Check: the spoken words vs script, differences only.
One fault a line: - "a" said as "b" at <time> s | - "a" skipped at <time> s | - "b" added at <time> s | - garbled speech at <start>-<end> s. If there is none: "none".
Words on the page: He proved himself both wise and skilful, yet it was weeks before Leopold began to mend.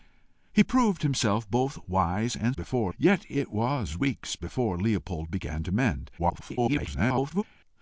- "skilful" said as "before" at 2.5 s
- garbled speech at 6.2-7.4 s